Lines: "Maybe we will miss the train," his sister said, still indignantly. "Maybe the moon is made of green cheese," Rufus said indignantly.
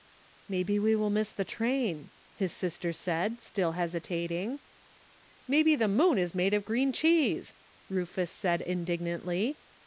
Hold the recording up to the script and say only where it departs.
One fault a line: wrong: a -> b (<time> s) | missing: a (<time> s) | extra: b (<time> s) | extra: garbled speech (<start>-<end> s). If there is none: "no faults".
wrong: indignantly -> hesitating (3.7 s)